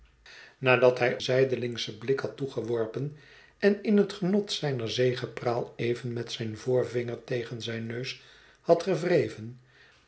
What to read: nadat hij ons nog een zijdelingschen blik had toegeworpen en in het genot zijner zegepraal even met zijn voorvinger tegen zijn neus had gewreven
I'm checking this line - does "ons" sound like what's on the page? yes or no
no